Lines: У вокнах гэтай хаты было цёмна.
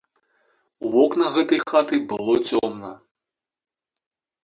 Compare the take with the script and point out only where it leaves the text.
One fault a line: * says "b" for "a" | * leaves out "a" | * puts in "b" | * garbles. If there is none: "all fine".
all fine